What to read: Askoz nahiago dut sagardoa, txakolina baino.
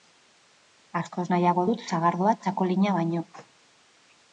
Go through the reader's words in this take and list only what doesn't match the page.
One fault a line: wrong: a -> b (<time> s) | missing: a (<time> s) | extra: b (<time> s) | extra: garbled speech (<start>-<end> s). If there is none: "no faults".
no faults